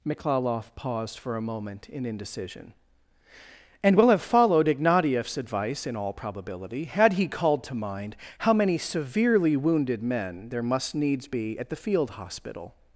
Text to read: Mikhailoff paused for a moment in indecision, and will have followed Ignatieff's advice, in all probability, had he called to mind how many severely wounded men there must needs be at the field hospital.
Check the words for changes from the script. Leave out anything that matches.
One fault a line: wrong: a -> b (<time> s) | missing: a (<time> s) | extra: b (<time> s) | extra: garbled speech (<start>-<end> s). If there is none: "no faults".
no faults